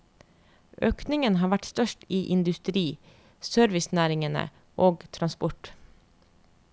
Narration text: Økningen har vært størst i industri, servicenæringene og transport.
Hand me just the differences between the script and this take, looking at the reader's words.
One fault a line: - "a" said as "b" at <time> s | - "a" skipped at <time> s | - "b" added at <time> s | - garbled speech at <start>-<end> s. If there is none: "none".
none